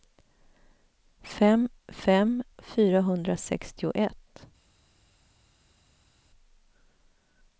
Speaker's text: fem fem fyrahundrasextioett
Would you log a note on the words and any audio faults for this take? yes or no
no